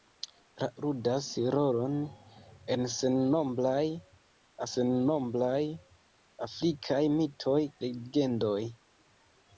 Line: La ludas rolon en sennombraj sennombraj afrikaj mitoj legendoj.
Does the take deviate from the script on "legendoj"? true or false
false